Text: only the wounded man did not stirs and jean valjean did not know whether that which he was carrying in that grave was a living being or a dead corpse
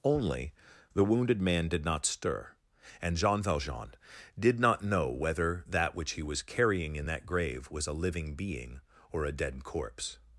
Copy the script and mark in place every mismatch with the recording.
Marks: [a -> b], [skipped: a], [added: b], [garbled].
only the wounded man did not [stirs -> stir] and jean valjean did not know whether that which he was carrying in that grave was a living being or a dead corpse